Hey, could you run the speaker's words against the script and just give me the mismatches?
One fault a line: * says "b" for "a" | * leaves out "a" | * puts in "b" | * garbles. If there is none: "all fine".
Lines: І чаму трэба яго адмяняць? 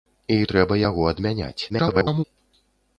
* leaves out "чаму"
* garbles